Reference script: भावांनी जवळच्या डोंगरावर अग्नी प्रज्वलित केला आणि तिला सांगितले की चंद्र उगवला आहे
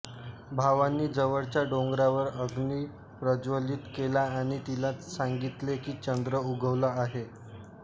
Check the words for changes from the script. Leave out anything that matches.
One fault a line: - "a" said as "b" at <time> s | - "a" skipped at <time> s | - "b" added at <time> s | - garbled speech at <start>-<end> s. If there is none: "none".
none